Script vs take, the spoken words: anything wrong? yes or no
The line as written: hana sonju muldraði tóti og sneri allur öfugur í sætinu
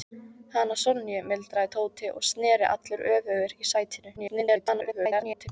yes